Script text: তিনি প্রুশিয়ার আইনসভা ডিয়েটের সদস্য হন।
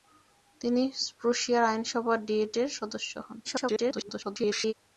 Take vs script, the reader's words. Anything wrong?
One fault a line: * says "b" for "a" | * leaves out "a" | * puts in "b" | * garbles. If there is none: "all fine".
* garbles